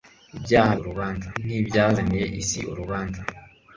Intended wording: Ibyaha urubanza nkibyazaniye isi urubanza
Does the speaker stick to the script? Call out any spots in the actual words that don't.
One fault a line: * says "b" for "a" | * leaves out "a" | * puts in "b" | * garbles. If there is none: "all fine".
all fine